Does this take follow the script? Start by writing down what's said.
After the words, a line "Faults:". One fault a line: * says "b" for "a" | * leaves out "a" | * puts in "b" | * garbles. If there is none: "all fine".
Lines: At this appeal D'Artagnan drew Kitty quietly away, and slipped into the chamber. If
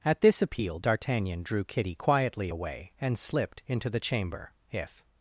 At this appeal D'Artagnan drew Kitty quietly away, and slipped into the chamber. If
Faults:
all fine